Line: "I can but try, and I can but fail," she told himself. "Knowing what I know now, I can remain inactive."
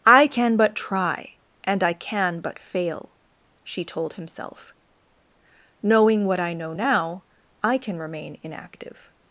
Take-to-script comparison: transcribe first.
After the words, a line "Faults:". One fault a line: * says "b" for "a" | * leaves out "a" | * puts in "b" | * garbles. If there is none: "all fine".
"I can but try, and I can but fail," she told himself. "Knowing what I know now, I can remain inactive."
Faults:
all fine